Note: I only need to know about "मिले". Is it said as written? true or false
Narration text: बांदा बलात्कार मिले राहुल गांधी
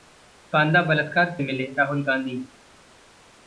true